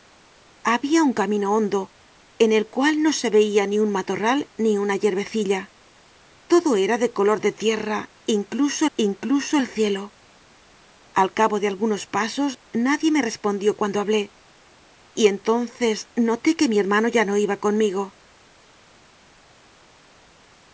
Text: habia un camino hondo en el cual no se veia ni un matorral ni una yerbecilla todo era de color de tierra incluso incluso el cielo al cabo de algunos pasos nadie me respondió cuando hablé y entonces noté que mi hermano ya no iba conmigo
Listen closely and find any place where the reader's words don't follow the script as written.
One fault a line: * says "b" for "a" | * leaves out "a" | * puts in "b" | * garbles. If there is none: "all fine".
all fine